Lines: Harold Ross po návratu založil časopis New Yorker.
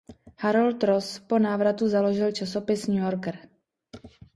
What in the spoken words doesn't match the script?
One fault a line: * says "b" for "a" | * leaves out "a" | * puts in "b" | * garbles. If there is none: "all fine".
all fine